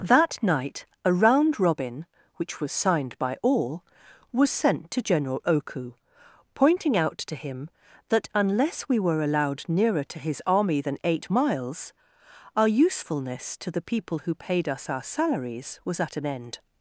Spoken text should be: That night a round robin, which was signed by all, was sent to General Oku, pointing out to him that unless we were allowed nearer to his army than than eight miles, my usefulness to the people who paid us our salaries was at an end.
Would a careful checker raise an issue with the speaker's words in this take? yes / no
yes